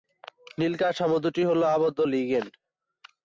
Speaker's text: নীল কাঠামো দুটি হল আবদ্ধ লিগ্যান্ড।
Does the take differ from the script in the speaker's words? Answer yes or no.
no